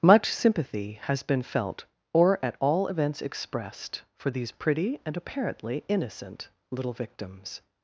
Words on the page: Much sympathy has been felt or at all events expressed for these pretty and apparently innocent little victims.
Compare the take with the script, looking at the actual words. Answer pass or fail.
pass